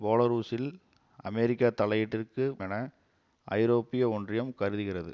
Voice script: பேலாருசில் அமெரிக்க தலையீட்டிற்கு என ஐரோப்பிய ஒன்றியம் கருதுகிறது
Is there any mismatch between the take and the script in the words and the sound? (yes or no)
no